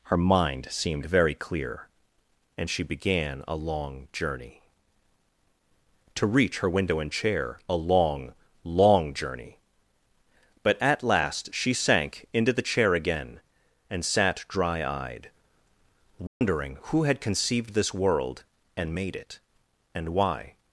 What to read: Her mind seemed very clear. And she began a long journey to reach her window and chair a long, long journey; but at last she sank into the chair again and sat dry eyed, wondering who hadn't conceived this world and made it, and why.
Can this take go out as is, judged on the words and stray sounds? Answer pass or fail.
fail